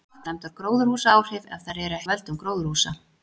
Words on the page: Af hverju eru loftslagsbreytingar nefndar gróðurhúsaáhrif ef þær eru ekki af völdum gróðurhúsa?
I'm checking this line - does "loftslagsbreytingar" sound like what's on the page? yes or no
no